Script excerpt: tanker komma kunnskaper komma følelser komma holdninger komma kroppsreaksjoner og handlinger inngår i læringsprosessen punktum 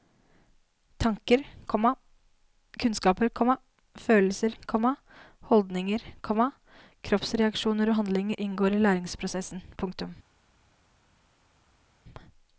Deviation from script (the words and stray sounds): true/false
false